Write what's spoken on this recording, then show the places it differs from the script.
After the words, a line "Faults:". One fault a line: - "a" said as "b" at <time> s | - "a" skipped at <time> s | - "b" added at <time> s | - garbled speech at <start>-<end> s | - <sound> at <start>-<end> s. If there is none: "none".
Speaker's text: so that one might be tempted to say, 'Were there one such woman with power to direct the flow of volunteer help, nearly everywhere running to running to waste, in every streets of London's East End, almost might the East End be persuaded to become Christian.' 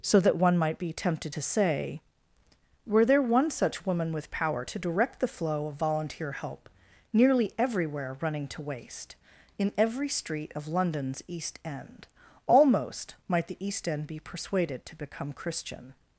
so that one might be tempted to say, 'Were there one such woman with power to direct the flow of volunteer help, nearly everywhere running to waste, in every street of London's East End, almost might the East End be persuaded to become Christian.'
Faults:
- "running to" skipped at 8.6 s
- "streets" said as "street" at 10.1 s